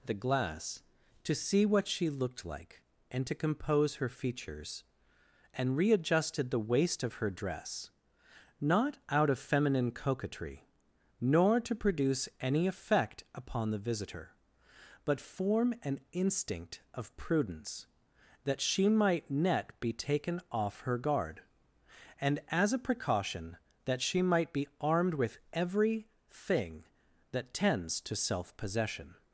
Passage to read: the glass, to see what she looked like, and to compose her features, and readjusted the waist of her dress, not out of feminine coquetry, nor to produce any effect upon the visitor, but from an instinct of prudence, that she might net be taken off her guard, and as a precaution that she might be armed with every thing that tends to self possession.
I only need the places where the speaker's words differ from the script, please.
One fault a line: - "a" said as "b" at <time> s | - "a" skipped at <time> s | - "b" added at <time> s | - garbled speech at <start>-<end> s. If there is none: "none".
- "from" said as "form" at 15.2 s